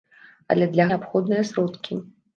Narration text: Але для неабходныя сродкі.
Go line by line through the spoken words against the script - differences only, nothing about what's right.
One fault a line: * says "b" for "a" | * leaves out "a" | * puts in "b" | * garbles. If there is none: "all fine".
all fine